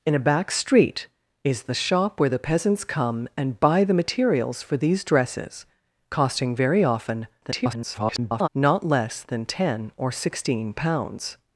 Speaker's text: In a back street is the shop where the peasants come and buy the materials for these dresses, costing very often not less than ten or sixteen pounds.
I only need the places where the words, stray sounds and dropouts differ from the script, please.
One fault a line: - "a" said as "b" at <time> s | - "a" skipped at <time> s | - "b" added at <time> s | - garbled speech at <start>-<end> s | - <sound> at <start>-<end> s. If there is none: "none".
- garbled speech at 7.4-8.5 s